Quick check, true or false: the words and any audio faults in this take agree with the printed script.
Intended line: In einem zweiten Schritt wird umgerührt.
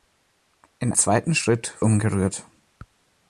false